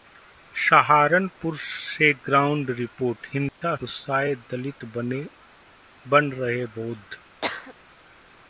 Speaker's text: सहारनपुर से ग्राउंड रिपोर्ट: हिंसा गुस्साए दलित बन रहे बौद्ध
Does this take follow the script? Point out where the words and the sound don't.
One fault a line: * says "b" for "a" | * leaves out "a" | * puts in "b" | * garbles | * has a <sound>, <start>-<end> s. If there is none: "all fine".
* has a dropout, 3.5-3.6 s
* has a cough, 7.4-7.7 s